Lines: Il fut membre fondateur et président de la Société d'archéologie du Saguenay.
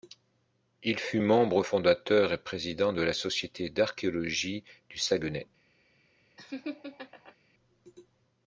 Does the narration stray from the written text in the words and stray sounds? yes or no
yes